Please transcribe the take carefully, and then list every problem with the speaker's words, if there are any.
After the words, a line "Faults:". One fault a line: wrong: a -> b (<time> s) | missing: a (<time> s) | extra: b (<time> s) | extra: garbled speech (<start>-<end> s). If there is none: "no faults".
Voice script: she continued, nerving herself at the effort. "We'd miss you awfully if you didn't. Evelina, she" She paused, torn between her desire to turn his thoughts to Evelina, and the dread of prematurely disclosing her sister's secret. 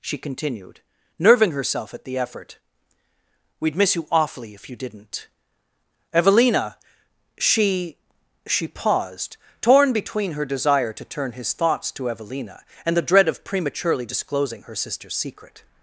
she continued, nerving herself at the effort. "We'd miss you awfully if you didn't. Evelina, she" She paused, torn between her desire to turn his thoughts to Evelina, and the dread of prematurely disclosing her sister's secret.
Faults:
no faults